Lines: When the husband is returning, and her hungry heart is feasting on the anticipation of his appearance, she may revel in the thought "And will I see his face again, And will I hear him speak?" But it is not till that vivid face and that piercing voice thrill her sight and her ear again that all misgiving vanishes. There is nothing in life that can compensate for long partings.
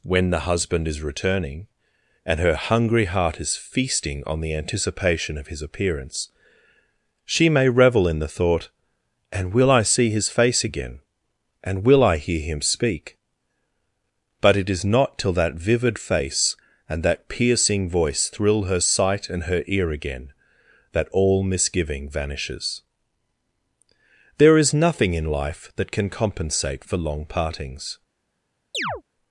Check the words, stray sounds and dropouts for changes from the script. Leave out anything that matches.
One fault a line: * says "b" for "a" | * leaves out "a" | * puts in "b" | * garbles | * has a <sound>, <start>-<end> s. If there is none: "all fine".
* has a chirp, 28.7-29.0 s